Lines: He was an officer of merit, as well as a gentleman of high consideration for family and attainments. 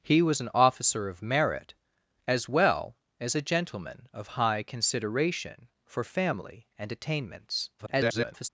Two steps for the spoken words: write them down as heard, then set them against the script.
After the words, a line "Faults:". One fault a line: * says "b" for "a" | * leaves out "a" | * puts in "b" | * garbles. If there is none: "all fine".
He was an officer of merit, as well as a gentleman of high consideration for family and attainments. [garbled]
Faults:
* garbles